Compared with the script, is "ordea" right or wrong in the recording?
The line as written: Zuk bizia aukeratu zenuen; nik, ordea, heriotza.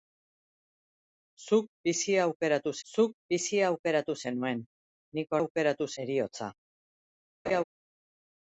wrong